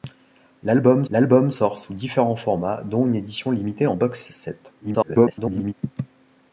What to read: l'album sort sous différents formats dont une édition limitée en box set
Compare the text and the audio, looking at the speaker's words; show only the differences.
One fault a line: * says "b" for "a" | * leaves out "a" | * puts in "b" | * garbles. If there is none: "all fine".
* puts in "l'album"
* garbles